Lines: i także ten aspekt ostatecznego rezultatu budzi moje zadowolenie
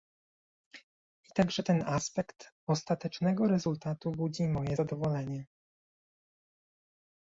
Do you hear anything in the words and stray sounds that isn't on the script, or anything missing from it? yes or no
no